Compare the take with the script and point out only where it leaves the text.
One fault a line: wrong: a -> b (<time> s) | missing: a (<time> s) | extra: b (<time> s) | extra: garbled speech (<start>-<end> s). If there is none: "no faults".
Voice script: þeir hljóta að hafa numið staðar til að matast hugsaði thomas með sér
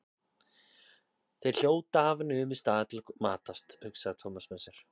no faults